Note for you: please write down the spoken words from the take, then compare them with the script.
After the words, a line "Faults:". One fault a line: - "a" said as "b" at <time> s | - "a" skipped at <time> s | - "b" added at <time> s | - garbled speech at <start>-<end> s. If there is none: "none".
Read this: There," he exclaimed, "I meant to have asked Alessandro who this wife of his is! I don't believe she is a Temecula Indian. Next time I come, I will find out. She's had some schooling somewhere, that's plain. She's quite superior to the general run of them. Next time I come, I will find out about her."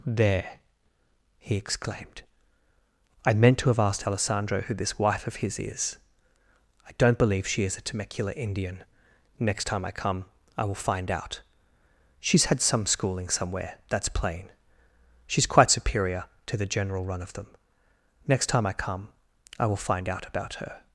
There," he exclaimed, "I meant to have asked Alessandro who this wife of his is! I don't believe she is a Temecula Indian. Next time I come, I will find out. She's had some schooling somewhere, that's plain. She's quite superior to the general run of them. Next time I come, I will find out about her."
Faults:
none